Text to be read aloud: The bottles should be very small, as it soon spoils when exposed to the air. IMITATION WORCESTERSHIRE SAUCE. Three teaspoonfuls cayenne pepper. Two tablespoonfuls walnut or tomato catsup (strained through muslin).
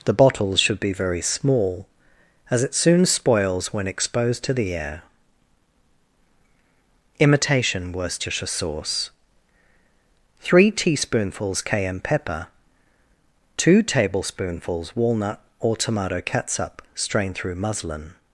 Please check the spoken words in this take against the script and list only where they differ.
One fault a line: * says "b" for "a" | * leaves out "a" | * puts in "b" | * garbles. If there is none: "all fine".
all fine